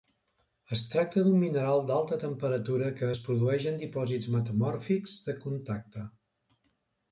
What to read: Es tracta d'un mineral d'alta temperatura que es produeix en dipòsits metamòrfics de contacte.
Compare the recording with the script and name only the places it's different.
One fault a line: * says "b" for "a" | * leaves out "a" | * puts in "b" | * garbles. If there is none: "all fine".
all fine